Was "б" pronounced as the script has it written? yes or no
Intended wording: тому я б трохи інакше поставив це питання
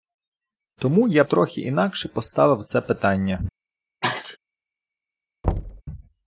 no